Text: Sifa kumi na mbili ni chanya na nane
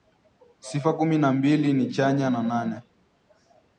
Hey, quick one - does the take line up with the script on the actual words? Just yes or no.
yes